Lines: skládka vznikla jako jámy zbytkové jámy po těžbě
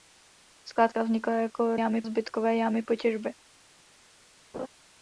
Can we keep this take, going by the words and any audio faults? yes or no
no